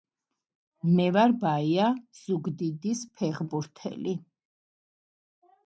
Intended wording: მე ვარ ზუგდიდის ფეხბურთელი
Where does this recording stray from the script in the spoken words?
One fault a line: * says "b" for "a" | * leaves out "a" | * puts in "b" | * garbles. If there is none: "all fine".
* puts in "ბაია"